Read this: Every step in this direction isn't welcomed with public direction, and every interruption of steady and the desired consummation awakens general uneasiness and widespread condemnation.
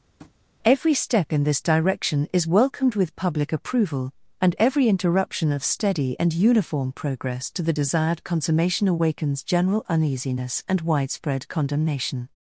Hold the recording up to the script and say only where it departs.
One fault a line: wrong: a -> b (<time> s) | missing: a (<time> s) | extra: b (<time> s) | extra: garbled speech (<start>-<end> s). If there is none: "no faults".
wrong: isn't -> is (2.3 s)
wrong: direction -> approval (3.5 s)
extra: uniform progress to (6.3 s)